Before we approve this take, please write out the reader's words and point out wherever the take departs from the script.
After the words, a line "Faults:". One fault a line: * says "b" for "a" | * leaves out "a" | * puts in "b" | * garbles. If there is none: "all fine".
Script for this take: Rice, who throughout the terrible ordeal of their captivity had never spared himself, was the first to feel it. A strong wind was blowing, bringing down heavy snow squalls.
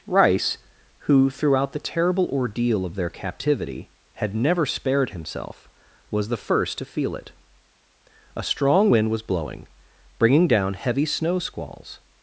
Rice, who throughout the terrible ordeal of their captivity had never spared himself, was the first to feel it. A strong wind was blowing, bringing down heavy snow squalls.
Faults:
all fine